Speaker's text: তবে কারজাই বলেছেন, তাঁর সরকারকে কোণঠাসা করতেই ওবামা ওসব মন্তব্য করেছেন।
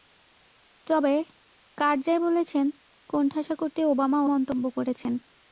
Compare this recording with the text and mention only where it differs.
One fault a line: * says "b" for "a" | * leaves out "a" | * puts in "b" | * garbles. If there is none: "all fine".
* leaves out "তাঁর সরকারকে"
* leaves out "ওসব"